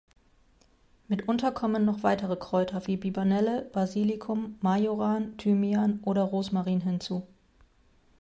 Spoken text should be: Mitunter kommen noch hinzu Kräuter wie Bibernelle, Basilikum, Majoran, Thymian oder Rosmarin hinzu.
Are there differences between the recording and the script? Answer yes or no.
yes